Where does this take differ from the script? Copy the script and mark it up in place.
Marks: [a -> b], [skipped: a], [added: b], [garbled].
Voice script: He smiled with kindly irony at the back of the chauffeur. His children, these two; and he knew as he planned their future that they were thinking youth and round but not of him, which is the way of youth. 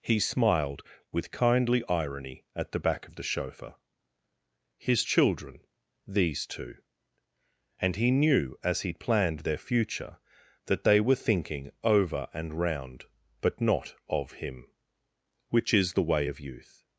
He smiled with kindly irony at the back of the chauffeur. His children, these two; and he knew as he planned their future that they were thinking [youth -> over] and round but not of him, which is the way of youth.